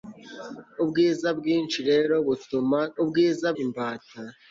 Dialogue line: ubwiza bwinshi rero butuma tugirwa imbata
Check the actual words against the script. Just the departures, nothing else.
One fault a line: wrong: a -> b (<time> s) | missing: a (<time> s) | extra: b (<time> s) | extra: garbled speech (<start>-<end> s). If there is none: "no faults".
wrong: tugirwa -> ubwiza (3.0 s)